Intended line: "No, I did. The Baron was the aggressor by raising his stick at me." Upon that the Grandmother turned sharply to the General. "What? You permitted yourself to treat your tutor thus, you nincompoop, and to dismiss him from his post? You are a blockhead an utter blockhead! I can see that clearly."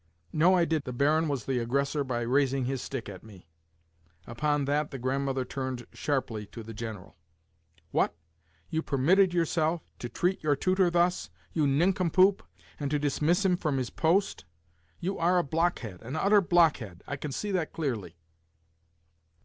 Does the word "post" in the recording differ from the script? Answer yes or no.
no